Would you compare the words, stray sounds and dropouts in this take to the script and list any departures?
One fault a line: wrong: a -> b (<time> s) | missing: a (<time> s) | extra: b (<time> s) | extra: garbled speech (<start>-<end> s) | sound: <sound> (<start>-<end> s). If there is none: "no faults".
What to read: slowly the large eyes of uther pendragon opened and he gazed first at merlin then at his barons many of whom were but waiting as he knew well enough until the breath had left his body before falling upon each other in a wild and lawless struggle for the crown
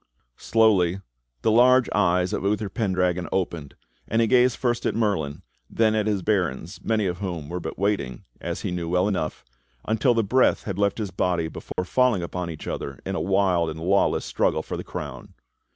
sound: dropout (11.7-11.8 s)